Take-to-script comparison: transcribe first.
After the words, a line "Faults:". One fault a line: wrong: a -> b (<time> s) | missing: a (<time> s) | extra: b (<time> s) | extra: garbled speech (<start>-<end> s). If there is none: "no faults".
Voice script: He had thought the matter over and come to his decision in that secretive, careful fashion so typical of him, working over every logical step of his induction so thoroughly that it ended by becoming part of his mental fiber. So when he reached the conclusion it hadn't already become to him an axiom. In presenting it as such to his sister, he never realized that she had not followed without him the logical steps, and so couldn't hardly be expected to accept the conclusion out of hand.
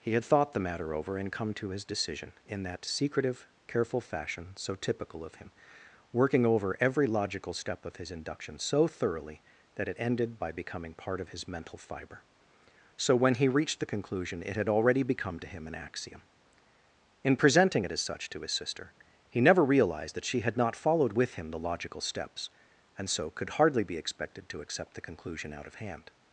He had thought the matter over and come to his decision in that secretive, careful fashion so typical of him, working over every logical step of his induction so thoroughly that it ended by becoming part of his mental fiber. So when he reached the conclusion it had already become to him an axiom. In presenting it as such to his sister, he never realized that she had not followed with him the logical steps, and so could hardly be expected to accept the conclusion out of hand.
Faults:
wrong: hadn't -> had (14.6 s)
wrong: without -> with (21.2 s)
wrong: couldn't -> could (23.3 s)